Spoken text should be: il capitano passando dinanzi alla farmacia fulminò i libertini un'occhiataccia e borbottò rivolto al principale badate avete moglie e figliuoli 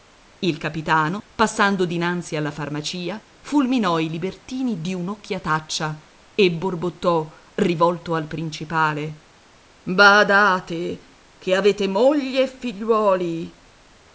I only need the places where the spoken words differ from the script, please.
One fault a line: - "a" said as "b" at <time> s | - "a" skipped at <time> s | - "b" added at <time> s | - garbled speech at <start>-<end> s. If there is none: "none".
- "di" added at 4.8 s
- "che" added at 11.4 s